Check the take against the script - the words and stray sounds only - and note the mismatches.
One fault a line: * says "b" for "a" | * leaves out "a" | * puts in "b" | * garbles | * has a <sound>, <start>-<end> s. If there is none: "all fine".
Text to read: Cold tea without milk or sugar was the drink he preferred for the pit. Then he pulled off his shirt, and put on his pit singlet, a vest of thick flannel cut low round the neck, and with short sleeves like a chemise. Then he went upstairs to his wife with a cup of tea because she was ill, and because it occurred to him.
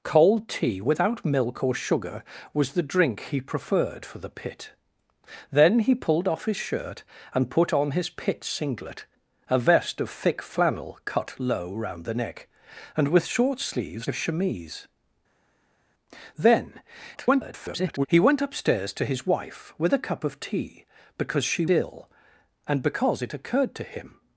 * leaves out "like"
* garbles
* leaves out "was"